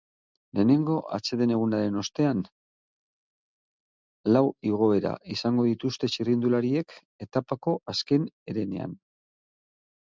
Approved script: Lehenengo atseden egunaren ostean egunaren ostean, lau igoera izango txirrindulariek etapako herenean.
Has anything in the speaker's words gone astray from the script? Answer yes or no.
yes